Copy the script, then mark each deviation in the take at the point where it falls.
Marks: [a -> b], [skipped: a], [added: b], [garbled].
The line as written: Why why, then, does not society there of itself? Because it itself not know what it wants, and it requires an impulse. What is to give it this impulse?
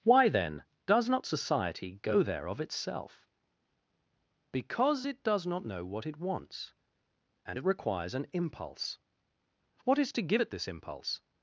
Why [skipped: why,] then, does not society [added: go] there of itself? Because it [itself -> does] not know what it wants, and it requires an impulse. What is to give it this impulse?